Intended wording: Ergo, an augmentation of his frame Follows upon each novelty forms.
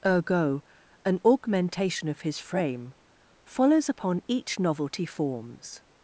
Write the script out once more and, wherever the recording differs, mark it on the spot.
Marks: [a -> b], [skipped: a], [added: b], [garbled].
Ergo, an augmentation of his frame Follows upon each novelty forms.